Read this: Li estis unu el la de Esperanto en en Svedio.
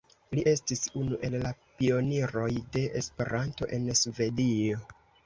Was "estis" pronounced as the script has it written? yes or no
yes